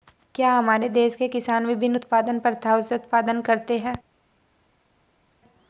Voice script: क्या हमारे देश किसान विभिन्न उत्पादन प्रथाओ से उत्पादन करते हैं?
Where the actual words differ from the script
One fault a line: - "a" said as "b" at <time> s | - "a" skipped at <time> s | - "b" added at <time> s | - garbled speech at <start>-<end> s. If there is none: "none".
- "के" added at 1.1 s